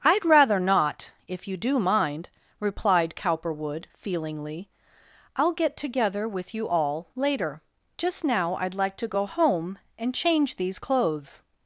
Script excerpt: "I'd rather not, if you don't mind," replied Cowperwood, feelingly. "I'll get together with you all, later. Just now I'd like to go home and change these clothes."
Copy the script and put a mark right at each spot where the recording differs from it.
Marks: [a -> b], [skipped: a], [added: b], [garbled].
"I'd rather not, if you [don't -> do] mind," replied Cowperwood, feelingly. "I'll get together with you all, later. Just now I'd like to go home and change these clothes."